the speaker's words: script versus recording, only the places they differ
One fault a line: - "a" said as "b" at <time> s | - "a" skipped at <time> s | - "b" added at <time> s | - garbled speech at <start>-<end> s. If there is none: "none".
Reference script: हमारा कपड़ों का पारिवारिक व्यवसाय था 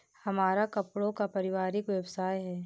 - "था" said as "है" at 2.4 s